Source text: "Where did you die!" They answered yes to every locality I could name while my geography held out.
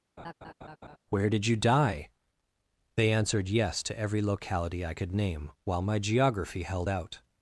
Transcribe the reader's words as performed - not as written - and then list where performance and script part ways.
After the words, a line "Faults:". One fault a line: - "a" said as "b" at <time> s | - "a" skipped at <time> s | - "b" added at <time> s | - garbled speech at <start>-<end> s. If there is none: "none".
"Where did you die!" They answered yes to every locality I could name while my geography held out.
Faults:
none